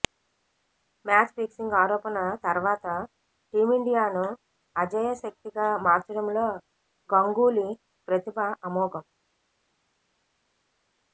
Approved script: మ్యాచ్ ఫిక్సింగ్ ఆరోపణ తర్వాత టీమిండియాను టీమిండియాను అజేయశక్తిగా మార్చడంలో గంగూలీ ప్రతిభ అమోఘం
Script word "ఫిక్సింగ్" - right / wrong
right